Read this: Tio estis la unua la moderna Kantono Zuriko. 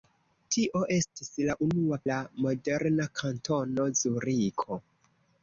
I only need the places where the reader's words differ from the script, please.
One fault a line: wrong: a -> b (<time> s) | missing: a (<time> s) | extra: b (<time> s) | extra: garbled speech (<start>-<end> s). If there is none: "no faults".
no faults